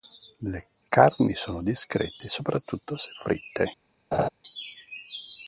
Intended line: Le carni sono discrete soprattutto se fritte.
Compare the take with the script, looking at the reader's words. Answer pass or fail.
pass